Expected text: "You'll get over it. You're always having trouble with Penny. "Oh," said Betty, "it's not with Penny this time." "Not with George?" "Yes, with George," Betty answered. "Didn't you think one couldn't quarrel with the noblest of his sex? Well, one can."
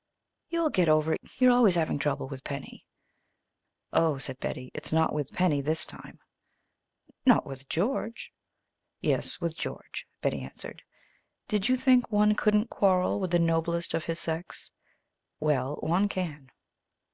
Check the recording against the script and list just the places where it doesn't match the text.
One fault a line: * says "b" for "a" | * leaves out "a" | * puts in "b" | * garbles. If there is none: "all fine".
* says "Did" for "Didn't"